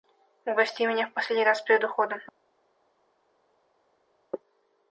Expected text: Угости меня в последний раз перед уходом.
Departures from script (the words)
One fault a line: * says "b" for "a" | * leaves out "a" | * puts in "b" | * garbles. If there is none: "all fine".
all fine